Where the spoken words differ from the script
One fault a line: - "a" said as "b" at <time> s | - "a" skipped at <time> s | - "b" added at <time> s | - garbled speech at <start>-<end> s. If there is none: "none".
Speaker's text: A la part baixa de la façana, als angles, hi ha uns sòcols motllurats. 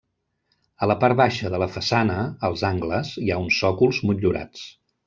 none